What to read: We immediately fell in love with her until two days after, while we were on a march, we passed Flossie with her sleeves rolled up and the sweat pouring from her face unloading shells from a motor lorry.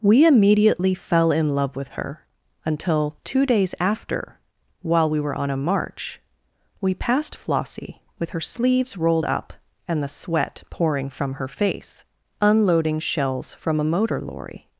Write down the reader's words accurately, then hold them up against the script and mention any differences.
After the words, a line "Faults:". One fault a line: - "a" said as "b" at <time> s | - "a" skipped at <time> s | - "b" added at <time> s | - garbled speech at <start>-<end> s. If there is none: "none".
We immediately fell in love with her until two days after, while we were on a march, we passed Flossie with her sleeves rolled up and the sweat pouring from her face unloading shells from a motor lorry.
Faults:
none